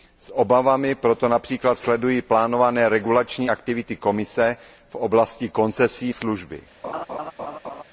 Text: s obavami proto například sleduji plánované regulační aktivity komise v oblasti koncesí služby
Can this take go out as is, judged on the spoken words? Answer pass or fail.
pass